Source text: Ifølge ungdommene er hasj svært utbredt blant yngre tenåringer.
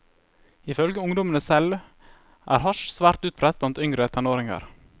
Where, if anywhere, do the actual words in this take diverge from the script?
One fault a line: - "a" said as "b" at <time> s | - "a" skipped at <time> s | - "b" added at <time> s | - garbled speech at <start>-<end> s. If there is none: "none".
- "selv" added at 1.4 s